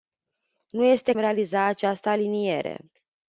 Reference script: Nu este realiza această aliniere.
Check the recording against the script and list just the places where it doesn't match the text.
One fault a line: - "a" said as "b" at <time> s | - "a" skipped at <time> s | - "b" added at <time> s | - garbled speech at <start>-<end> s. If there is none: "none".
none